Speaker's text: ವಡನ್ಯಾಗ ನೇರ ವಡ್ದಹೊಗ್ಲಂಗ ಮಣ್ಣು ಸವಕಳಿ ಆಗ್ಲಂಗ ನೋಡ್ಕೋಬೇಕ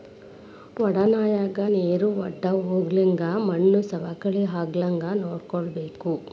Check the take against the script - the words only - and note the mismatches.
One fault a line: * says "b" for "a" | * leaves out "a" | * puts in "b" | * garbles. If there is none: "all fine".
all fine